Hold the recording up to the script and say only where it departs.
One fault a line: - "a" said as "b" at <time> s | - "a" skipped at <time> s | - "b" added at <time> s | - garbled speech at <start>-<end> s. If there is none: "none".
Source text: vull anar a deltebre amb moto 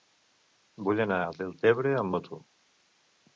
none